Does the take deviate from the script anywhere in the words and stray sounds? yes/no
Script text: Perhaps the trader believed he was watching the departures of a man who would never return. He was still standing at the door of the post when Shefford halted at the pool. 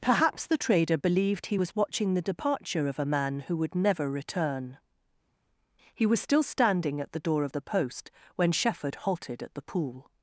yes